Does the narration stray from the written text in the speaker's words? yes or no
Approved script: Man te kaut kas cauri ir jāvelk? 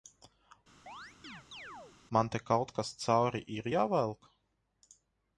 no